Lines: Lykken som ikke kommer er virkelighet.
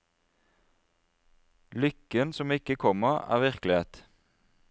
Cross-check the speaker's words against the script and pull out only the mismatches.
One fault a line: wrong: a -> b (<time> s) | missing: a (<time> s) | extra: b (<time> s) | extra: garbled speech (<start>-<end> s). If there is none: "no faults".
no faults